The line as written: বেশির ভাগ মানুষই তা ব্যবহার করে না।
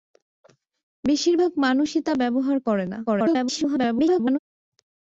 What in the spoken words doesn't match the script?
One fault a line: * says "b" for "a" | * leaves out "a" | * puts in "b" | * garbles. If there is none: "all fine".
* garbles